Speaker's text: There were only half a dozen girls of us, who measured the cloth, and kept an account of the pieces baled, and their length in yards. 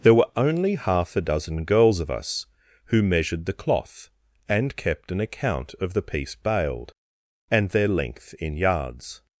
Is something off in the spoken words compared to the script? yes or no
yes